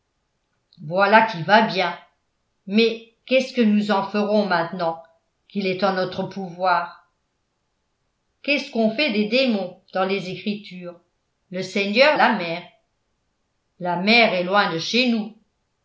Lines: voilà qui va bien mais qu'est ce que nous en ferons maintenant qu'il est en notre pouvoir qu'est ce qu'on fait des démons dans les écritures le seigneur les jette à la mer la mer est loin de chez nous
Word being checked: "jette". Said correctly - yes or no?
no